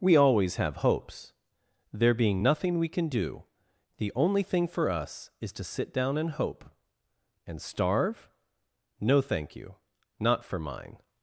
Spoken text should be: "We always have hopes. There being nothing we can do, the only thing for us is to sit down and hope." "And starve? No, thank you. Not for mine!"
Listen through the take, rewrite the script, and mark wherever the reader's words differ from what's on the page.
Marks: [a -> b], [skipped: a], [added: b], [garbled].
"We always have hopes. There being nothing we can do, the only thing for us is to sit down and hope." "And starve? No, thank you. Not for mine!"